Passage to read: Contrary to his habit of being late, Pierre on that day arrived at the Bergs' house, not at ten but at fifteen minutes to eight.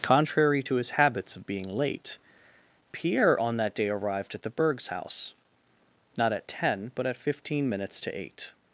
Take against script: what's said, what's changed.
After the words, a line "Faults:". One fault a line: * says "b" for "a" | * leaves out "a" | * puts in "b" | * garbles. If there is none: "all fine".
Contrary to his habits of being late, Pierre on that day arrived at the Bergs' house, not at ten but at fifteen minutes to eight.
Faults:
* says "habits" for "habit"